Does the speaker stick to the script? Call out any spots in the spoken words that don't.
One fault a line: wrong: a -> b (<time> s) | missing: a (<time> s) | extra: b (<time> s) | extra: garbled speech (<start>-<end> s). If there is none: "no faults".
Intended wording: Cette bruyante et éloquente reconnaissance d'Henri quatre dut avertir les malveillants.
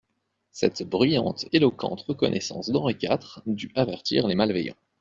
missing: et (1.4 s)